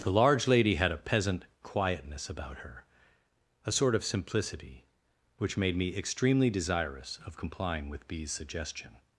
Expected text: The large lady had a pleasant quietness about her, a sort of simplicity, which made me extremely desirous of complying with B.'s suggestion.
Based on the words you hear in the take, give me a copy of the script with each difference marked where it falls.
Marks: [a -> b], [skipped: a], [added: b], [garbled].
The large lady had a [pleasant -> peasant] quietness about her, a sort of simplicity, which made me extremely desirous of complying with B.'s suggestion.